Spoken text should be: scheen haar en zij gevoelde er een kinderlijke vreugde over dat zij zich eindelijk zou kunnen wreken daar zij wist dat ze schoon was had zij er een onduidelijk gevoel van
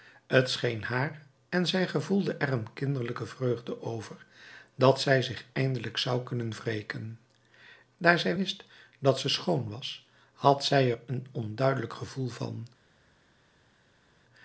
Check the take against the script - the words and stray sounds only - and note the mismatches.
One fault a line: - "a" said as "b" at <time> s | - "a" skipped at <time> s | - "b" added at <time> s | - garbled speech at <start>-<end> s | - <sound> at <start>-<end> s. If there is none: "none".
none